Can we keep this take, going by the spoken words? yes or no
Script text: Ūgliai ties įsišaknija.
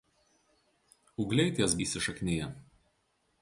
yes